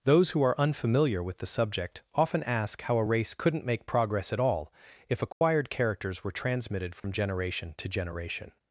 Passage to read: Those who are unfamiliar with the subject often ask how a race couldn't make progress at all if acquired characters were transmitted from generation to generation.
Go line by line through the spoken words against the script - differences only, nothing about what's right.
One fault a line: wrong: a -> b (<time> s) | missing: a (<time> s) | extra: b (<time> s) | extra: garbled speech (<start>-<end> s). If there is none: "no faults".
no faults